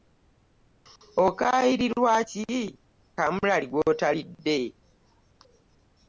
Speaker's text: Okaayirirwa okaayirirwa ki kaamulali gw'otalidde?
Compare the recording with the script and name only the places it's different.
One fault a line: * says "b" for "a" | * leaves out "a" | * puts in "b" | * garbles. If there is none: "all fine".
* leaves out "okaayirirwa"